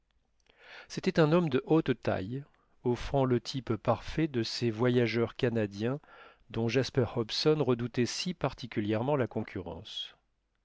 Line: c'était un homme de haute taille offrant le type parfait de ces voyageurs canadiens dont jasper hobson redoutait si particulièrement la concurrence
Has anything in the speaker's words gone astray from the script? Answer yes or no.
no